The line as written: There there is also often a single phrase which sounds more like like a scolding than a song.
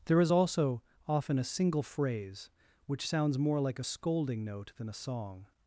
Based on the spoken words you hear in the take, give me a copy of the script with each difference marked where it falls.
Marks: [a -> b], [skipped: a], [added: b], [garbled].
There [skipped: there] is also often a single phrase which sounds more like [skipped: like] a scolding [added: note] than a song.